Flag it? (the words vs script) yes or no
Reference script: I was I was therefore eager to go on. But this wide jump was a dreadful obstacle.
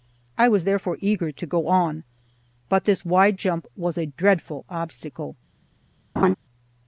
yes